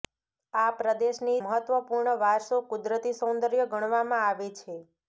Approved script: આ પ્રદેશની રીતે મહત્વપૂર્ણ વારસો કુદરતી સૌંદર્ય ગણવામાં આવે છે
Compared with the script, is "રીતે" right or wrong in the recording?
wrong